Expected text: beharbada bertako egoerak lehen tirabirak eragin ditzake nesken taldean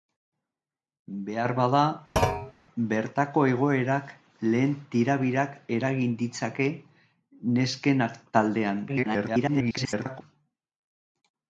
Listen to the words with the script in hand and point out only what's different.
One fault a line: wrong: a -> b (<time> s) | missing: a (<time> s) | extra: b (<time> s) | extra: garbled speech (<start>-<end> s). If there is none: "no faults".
extra: garbled speech (8.9-10.2 s)